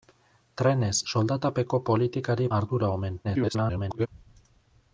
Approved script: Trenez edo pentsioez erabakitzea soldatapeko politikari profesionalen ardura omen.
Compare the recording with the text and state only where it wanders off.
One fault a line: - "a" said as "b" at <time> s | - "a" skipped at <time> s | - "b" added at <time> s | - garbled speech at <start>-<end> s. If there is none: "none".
- "edo pentsioez erabakitzea" skipped at 0.9 s
- "profesionalen" skipped at 2.5 s
- garbled speech at 3.2-4.1 s